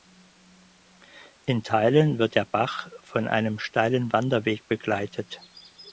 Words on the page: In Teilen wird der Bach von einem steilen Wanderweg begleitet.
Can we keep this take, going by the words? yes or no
yes